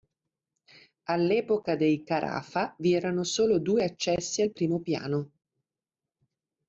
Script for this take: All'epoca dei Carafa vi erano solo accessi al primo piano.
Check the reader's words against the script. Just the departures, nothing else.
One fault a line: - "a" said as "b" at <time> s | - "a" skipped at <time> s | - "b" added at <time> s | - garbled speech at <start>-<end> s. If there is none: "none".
- "due" added at 3.6 s